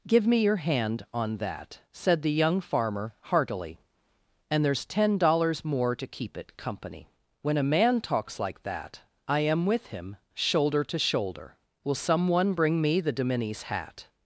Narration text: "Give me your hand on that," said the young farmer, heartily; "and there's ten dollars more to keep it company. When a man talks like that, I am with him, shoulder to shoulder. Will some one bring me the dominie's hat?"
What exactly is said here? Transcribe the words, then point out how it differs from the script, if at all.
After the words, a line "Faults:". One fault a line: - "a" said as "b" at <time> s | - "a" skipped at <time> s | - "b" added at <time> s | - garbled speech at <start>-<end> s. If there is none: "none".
"Give me your hand on that," said the young farmer, heartily; "and there's ten dollars more to keep it company. When a man talks like that, I am with him, shoulder to shoulder. Will some one bring me the dominie's hat?"
Faults:
none